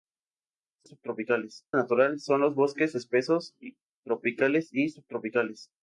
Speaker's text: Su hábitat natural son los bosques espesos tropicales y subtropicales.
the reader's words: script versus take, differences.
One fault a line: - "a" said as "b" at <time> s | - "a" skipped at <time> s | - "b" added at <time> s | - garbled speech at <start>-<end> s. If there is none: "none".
- "hábitat" said as "subtropicales" at 0.8 s